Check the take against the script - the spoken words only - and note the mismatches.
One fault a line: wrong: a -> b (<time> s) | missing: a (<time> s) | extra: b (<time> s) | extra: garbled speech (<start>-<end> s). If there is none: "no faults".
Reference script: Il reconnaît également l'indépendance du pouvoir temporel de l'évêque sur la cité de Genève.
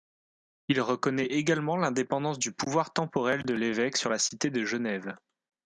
no faults